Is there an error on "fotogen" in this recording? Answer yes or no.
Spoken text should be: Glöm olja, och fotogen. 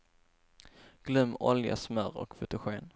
no